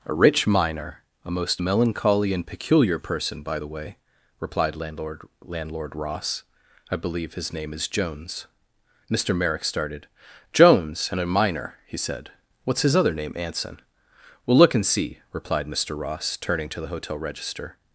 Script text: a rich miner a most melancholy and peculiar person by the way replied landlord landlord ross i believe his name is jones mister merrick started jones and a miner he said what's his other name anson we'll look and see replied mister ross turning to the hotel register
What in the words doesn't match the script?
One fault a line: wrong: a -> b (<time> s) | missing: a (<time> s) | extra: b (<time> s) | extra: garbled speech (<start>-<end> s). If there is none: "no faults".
no faults